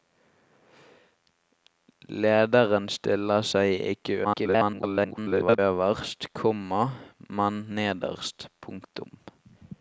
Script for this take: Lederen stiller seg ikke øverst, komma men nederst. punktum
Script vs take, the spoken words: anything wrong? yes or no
yes